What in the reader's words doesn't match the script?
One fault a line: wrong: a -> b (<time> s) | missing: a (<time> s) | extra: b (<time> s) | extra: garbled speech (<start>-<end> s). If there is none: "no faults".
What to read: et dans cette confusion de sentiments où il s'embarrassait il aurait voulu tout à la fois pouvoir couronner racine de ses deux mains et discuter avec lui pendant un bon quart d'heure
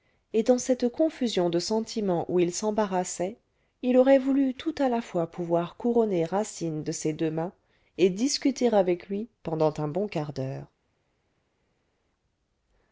no faults